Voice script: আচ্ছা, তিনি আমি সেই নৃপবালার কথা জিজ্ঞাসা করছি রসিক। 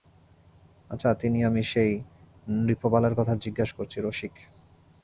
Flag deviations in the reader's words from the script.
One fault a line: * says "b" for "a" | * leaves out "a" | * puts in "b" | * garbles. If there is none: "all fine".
all fine